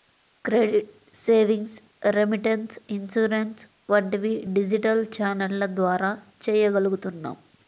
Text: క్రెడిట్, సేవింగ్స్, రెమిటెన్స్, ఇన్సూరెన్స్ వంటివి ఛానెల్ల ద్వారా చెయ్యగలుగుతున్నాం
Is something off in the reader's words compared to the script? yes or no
yes